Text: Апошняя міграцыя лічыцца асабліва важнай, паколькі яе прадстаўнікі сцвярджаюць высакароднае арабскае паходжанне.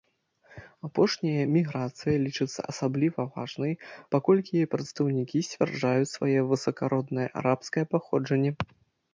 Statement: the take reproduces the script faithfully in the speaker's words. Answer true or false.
false